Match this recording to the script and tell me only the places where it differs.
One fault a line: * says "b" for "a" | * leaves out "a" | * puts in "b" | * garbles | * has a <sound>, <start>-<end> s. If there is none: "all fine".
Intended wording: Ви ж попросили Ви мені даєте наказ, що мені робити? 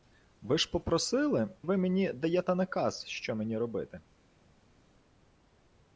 all fine